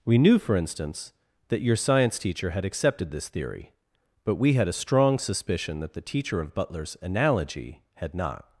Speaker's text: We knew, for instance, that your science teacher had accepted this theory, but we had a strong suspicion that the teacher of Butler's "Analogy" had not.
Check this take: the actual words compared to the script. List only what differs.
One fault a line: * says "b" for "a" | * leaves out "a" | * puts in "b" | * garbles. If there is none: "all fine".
all fine